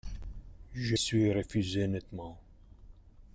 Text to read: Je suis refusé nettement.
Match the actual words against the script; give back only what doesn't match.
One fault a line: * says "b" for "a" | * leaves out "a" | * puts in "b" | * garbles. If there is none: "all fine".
all fine